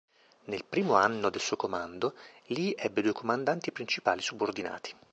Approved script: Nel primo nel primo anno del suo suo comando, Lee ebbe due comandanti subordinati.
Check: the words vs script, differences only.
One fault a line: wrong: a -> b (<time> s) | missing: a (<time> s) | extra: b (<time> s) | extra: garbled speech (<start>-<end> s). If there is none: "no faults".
missing: nel primo (0.9 s)
missing: suo (1.6 s)
extra: principali (3.7 s)